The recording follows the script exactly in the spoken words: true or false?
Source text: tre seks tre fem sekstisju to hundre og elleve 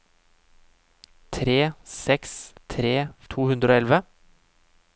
false